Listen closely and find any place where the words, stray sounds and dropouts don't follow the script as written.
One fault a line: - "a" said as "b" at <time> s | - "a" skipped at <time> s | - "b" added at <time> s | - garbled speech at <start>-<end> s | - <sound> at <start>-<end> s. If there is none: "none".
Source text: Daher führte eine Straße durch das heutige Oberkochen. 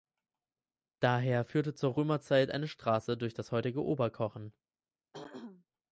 - "zur Römerzeit" added at 1.8 s
- throat clearing at 5.1-5.7 s